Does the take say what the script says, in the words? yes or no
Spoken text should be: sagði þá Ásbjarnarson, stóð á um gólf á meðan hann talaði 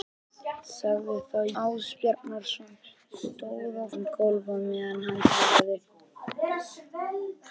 yes